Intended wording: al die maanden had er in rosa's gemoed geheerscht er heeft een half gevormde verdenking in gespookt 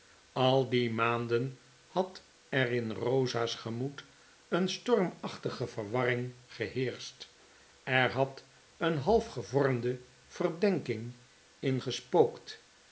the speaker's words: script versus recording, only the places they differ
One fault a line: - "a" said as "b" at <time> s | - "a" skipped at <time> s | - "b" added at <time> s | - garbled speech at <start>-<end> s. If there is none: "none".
- "een stormachtige verwarring" added at 4.5 s
- "heeft" said as "had" at 8.1 s